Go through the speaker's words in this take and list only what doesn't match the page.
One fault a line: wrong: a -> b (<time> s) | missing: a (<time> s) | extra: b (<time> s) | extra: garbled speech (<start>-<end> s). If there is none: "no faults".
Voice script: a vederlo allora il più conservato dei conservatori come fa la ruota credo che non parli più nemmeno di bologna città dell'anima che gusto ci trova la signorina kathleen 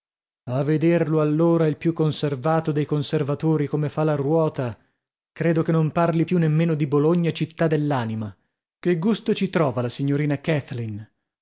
no faults